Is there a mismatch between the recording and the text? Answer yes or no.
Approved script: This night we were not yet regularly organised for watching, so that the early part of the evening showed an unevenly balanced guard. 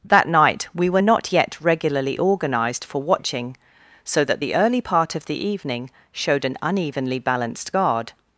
yes